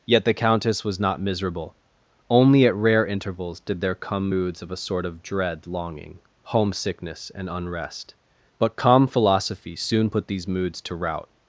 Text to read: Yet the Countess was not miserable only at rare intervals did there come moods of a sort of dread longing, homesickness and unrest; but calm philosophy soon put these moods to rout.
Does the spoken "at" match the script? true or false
true